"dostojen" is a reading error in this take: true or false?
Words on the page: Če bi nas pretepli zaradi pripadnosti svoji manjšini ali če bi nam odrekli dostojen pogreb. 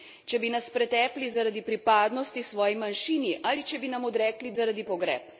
true